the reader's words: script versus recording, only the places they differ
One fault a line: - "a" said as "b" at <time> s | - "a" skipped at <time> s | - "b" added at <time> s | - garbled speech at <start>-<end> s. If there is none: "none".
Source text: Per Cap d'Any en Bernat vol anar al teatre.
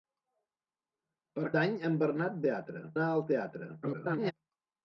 - "Cap" skipped at 1.5 s
- "vol" said as "teatre" at 2.5 s
- garbled speech at 3.8-4.3 s